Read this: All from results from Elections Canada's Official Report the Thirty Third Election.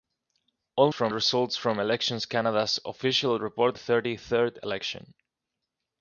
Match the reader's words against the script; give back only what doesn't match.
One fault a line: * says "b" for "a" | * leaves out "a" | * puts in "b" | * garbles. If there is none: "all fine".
all fine